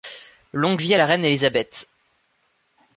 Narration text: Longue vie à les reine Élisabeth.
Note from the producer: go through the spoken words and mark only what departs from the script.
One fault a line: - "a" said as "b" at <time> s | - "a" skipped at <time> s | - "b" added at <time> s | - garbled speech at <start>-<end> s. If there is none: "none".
- "les" said as "la" at 1.0 s